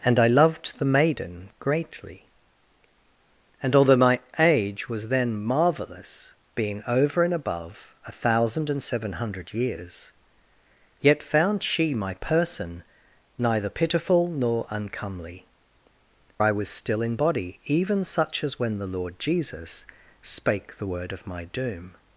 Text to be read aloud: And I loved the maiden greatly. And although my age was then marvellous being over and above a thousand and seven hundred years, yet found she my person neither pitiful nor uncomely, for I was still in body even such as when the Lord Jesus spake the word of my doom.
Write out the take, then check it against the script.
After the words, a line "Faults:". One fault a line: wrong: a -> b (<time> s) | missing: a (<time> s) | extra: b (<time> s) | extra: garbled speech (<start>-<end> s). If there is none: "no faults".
And I loved the maiden greatly. And although my age was then marvellous being over and above a thousand and seven hundred years, yet found she my person neither pitiful nor uncomely, I was still in body even such as when the Lord Jesus spake the word of my doom.
Faults:
missing: for (15.4 s)